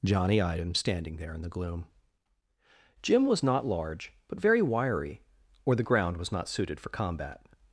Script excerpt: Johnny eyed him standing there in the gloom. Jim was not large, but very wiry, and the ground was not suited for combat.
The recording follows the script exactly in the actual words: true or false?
false